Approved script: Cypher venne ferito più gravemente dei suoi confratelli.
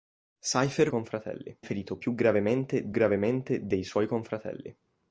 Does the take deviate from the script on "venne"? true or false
true